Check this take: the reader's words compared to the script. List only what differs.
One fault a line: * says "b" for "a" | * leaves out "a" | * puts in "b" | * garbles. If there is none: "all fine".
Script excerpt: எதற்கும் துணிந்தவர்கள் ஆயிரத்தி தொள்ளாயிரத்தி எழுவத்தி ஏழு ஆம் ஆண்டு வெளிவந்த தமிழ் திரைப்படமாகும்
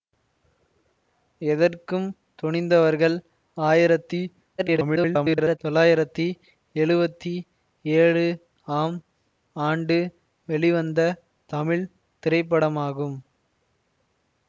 * garbles